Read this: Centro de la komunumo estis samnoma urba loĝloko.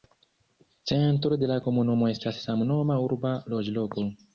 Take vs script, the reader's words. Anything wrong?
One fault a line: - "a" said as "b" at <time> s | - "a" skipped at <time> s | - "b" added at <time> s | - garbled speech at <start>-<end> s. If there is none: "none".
- "estis" said as "estas" at 2.2 s